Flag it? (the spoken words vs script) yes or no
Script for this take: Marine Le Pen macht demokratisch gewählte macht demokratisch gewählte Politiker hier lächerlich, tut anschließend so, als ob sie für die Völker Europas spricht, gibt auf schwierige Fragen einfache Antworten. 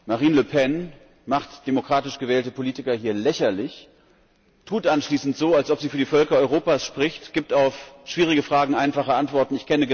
yes